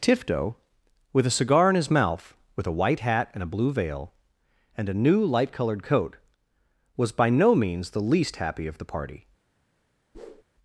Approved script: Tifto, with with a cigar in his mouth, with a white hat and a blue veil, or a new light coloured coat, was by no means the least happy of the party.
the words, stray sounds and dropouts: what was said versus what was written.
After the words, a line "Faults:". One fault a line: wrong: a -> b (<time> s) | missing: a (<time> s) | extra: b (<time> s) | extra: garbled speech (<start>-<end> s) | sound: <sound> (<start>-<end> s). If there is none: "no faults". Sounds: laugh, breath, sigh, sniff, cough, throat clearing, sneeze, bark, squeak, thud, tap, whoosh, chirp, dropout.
Tifto, with a cigar in his mouth, with a white hat and a blue veil, and a new light coloured coat, was by no means the least happy of the party.
Faults:
missing: with (1.3 s)
wrong: or -> and (4.8 s)
sound: whoosh (10.1-10.4 s)